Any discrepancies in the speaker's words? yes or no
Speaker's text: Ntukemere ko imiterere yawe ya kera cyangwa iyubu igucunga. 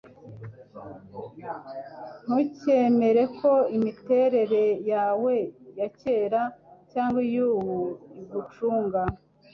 no